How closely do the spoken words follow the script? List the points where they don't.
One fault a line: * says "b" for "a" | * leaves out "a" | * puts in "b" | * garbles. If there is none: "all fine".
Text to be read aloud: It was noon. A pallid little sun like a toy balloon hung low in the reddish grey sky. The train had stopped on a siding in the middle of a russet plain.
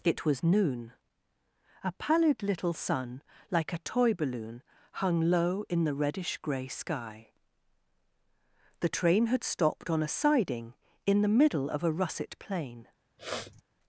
all fine